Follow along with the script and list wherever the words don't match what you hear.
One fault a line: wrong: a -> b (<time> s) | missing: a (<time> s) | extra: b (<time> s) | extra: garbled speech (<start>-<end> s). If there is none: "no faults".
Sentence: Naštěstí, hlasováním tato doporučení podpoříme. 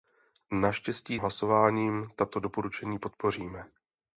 no faults